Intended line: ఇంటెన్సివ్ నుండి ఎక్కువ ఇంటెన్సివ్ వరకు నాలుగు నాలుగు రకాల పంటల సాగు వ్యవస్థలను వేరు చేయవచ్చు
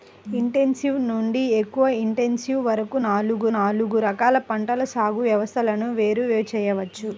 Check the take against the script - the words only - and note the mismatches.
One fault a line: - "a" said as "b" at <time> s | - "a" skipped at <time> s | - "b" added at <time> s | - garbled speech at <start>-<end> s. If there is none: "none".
none